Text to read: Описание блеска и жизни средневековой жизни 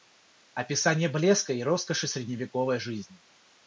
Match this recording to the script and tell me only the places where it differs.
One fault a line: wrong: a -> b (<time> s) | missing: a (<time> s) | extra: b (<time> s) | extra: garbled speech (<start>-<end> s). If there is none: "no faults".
wrong: жизни -> роскоши (1.6 s)